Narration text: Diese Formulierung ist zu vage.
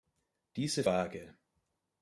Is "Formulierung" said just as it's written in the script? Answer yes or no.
no